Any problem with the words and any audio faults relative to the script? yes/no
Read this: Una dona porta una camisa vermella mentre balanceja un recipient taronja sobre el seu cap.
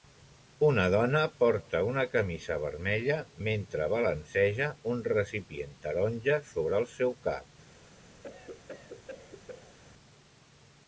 yes